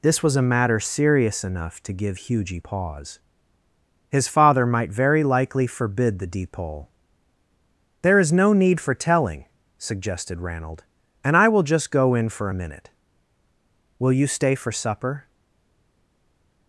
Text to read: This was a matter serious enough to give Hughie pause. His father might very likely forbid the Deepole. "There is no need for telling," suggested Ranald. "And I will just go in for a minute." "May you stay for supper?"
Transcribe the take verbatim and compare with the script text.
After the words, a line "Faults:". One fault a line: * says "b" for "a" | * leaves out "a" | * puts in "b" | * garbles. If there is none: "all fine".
This was a matter serious enough to give Hughie pause. His father might very likely forbid the Deepole. "There is no need for telling," suggested Ranald. "And I will just go in for a minute." "Will you stay for supper?"
Faults:
* says "Will" for "May"